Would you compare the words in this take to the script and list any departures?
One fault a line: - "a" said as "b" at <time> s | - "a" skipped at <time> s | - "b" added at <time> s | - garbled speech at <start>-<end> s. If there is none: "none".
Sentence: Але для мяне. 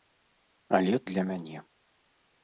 none